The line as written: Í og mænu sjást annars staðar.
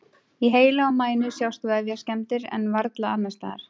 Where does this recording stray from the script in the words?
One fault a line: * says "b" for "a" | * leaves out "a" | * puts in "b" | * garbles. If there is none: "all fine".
* puts in "heila"
* puts in "vefjaskemmdir en varla"